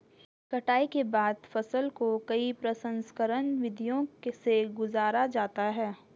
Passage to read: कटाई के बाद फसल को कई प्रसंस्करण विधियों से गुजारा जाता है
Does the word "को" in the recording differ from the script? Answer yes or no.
no